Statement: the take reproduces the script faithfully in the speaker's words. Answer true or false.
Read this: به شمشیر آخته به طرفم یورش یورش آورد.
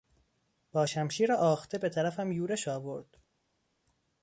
false